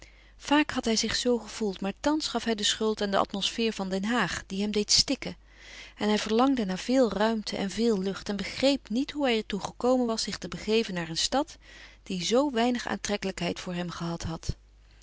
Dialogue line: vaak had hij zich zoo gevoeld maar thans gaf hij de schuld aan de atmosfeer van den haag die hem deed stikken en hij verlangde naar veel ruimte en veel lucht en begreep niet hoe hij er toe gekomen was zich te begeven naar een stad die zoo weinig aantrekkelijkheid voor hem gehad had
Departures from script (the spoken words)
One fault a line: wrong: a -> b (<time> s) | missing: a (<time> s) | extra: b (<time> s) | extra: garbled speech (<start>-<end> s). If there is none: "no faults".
no faults